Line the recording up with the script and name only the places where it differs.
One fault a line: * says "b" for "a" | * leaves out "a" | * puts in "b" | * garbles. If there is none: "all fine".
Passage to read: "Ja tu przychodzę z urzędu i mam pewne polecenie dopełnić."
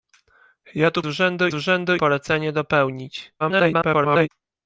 * says "urzędu" for "przychodzę"
* leaves out "i mam pewne"
* garbles